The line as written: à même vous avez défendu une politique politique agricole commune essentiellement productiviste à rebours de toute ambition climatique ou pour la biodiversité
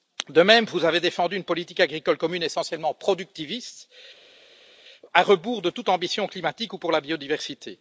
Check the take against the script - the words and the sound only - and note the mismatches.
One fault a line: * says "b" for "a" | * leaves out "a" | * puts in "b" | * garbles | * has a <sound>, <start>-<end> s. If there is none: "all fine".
* says "de" for "à"
* leaves out "politique"